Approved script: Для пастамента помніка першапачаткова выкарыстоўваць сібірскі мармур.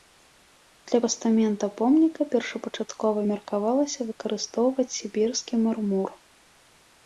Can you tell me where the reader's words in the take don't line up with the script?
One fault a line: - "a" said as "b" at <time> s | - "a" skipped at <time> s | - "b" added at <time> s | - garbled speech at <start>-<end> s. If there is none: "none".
- "меркавалася" added at 3.3 s